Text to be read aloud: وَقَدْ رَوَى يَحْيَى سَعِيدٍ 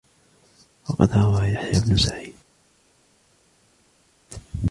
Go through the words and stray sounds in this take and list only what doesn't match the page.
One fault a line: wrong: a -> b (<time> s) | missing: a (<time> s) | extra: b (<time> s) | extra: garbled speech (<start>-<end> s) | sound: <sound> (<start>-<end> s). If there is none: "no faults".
extra: بْنُ (1.8 s)